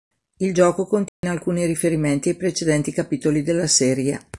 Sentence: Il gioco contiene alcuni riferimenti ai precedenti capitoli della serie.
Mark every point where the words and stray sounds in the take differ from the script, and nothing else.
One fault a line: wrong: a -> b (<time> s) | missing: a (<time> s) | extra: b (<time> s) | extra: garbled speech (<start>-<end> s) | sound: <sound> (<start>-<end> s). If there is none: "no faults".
sound: dropout (1.1-1.2 s)